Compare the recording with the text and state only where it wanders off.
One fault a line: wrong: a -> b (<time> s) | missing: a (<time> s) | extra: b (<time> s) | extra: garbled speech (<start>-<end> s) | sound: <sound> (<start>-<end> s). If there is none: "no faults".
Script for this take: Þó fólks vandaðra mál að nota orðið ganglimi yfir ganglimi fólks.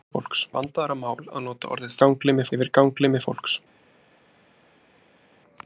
no faults